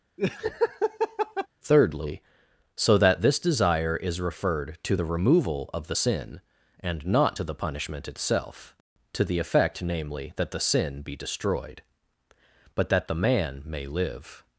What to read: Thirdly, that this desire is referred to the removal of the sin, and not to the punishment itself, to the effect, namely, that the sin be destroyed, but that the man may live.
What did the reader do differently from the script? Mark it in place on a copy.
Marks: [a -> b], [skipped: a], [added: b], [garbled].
Thirdly, [added: so] that this desire is referred to the removal of the sin, and not to the punishment itself, to the effect, namely, that the sin be destroyed, but that the man may live.